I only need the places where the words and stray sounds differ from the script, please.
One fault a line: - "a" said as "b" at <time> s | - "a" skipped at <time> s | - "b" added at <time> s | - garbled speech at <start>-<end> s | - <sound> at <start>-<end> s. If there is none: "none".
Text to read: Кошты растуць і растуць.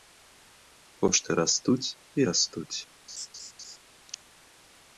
- laugh at 3.1-3.8 s